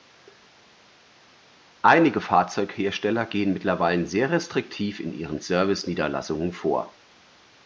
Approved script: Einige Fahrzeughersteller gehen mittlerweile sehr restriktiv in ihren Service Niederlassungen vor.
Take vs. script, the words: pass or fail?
pass